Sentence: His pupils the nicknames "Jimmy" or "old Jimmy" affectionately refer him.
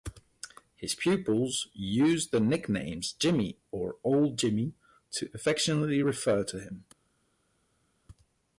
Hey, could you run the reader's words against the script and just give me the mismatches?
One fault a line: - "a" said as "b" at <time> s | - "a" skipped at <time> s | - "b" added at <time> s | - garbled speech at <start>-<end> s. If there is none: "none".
- "used" added at 1.8 s
- "to" added at 5.1 s
- "to" added at 6.4 s